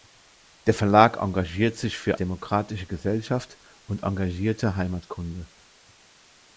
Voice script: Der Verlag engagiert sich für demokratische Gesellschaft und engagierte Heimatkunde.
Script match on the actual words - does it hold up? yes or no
yes